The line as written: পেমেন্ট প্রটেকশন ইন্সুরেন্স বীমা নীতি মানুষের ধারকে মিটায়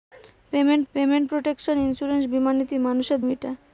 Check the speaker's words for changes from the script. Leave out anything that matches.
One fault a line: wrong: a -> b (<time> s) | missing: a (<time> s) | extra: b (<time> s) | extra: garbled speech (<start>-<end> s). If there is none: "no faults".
extra: পেমেন্ট (0.9 s)
missing: ধারকে (3.2 s)